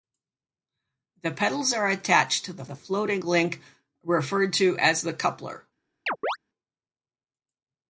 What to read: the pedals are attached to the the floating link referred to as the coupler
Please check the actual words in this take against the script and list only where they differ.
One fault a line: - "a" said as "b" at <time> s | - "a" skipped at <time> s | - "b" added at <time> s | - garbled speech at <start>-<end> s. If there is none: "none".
none